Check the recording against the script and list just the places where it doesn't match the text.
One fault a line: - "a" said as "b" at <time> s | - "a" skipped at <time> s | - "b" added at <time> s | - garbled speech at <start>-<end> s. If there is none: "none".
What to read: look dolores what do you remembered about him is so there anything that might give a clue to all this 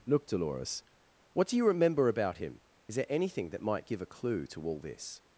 - "remembered" said as "remember" at 1.7 s
- "so" skipped at 3.0 s